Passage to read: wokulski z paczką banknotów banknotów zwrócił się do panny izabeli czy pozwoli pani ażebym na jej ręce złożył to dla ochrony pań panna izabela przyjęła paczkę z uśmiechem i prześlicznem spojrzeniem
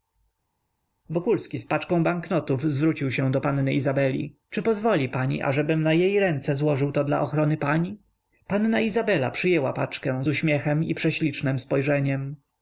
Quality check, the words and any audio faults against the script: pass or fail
fail